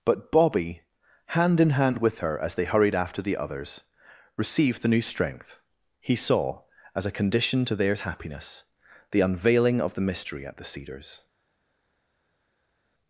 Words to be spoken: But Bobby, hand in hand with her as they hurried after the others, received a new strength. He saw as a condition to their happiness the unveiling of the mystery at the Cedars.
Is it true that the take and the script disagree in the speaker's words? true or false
true